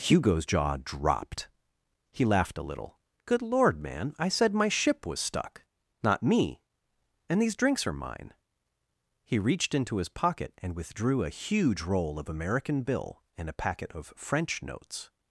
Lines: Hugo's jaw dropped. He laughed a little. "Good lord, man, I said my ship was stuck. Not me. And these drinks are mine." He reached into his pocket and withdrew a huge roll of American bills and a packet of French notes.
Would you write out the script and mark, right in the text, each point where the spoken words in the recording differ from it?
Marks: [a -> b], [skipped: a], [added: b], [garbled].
Hugo's jaw dropped. He laughed a little. "Good lord, man, I said my ship was stuck. Not me. And these drinks are mine." He reached into his pocket and withdrew a huge roll of American [bills -> bill] and a packet of French notes.